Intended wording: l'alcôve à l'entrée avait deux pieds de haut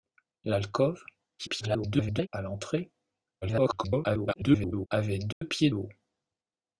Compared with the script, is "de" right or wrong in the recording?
wrong